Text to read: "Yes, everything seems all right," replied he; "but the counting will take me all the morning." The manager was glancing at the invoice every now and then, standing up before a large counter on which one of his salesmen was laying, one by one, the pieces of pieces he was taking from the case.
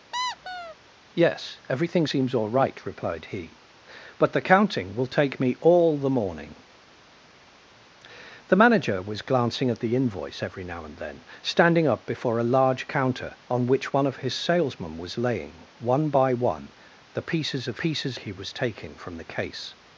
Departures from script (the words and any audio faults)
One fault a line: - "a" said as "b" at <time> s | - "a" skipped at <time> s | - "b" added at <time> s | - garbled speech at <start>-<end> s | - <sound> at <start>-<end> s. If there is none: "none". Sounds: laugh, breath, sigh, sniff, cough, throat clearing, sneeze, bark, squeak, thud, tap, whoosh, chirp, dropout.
- squeak at 0.1-0.8 s